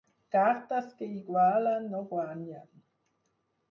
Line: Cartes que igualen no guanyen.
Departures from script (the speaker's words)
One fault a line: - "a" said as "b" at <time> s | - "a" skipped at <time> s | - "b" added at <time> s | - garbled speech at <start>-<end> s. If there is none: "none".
none